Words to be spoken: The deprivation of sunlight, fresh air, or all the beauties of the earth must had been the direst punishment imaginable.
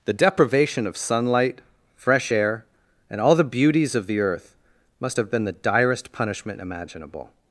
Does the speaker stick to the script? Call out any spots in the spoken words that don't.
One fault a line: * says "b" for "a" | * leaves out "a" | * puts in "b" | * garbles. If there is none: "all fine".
* says "and" for "or"
* says "have" for "had"